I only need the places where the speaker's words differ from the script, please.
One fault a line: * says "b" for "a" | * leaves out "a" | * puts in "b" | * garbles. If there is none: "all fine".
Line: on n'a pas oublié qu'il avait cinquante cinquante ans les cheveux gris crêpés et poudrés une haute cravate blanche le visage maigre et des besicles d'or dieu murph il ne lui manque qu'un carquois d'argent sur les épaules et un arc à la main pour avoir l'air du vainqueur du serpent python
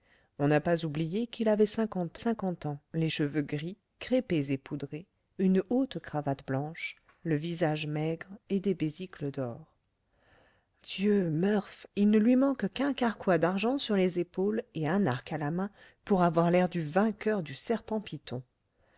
all fine